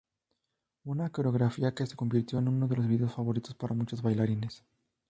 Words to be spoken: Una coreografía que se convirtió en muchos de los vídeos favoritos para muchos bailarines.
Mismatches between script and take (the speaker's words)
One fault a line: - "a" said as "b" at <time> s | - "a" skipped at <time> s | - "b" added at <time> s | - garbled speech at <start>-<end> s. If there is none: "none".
- "muchos" said as "uno" at 2.5 s